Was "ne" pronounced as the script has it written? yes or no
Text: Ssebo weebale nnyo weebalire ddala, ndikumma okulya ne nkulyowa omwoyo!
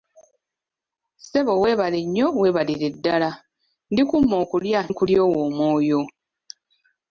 no